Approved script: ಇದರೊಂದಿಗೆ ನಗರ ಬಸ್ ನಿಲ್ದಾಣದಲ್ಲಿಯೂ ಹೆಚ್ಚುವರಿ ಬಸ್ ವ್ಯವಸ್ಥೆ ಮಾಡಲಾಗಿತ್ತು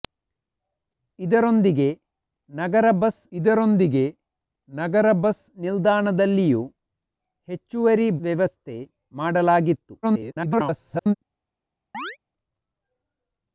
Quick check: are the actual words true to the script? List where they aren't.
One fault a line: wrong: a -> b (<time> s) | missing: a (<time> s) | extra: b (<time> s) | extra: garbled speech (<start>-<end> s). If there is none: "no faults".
extra: ಇದರೊಂದಿಗೆ ನಗರ ಬಸ್ (3.3 s)
missing: ಬಸ್ (8.1 s)
extra: garbled speech (10.0-11.1 s)